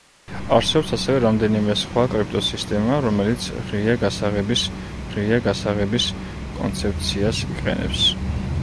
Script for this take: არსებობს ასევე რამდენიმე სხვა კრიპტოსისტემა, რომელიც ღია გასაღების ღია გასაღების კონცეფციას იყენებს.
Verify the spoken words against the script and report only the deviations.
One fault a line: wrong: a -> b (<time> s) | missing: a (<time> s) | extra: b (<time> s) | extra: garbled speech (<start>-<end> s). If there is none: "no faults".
no faults